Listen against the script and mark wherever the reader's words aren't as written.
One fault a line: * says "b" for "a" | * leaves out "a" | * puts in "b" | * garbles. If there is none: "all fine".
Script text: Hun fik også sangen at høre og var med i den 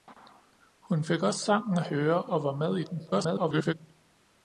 * garbles